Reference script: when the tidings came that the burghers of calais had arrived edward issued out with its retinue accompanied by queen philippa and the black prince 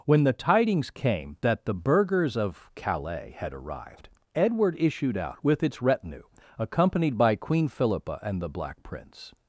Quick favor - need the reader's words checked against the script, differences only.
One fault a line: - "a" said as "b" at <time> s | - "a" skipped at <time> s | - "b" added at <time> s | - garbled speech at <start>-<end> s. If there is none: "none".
none